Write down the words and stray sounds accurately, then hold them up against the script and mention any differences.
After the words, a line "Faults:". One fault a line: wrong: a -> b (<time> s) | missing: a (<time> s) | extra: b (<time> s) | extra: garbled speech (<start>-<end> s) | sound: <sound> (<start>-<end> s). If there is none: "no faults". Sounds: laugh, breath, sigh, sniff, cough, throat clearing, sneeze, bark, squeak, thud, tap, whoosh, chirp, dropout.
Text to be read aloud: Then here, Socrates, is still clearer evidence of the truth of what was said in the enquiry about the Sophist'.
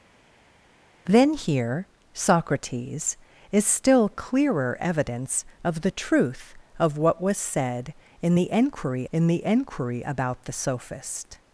Then here, Socrates, is still clearer evidence of the truth of what was said in the enquiry in the enquiry about the Sophist'.
Faults:
extra: in the enquiry (9.1 s)